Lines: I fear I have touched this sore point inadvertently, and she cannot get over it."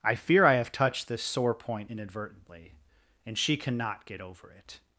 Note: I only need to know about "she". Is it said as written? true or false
true